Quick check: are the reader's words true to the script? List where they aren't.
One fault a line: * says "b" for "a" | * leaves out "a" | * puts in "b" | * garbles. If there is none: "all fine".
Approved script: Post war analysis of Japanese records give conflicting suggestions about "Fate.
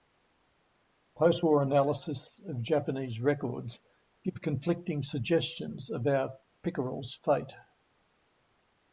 * puts in "Pickerel"s"